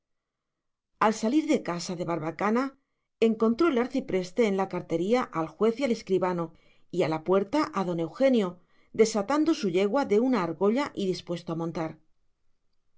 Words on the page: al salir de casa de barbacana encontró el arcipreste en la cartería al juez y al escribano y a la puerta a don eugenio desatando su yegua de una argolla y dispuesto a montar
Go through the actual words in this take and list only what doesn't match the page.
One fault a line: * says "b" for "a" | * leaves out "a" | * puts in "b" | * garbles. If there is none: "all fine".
all fine